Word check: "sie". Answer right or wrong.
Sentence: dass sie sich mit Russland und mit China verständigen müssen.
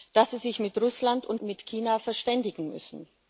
right